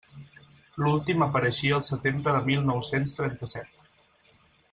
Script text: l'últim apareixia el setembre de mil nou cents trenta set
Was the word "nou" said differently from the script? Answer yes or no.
no